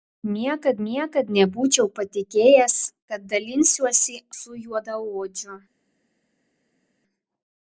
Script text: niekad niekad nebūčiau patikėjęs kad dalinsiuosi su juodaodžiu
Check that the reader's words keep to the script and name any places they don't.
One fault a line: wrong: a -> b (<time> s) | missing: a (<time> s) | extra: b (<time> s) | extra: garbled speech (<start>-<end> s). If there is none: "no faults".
no faults